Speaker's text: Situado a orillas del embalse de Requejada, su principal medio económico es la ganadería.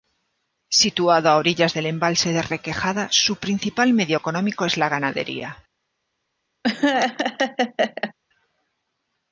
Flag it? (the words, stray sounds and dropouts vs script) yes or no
yes